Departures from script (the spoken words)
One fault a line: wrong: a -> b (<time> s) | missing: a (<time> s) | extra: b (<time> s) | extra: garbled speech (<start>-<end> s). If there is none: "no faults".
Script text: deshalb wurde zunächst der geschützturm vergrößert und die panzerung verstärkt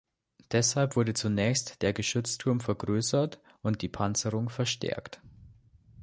no faults